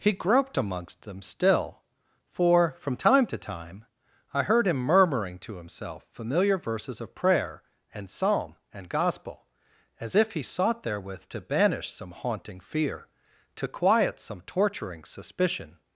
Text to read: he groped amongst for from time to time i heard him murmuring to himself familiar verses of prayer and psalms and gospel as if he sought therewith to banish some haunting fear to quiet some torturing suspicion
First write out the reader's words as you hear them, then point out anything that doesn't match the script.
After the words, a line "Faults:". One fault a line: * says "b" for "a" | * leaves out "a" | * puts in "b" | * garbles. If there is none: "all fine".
he groped amongst them still for from time to time i heard him murmuring to himself familiar verses of prayer and psalm and gospel as if he sought therewith to banish some haunting fear to quiet some torturing suspicion
Faults:
* puts in "them still"
* says "psalm" for "psalms"